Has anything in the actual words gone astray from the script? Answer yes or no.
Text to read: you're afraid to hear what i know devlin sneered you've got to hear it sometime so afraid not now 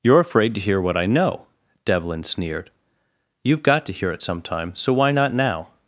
yes